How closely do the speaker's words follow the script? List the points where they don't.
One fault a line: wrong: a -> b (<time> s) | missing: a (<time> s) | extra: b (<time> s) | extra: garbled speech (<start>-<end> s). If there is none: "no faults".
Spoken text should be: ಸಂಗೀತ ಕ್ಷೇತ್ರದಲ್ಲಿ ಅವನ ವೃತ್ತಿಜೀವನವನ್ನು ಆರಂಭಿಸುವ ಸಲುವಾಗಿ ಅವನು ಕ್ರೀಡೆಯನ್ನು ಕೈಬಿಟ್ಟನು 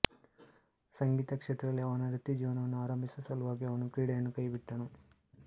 no faults